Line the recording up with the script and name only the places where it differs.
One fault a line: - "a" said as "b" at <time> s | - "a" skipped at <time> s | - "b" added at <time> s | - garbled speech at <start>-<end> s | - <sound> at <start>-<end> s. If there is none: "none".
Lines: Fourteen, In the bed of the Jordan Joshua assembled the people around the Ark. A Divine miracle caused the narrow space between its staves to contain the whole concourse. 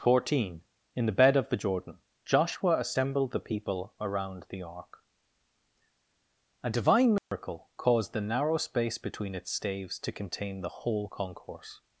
- dropout at 7.2-7.3 s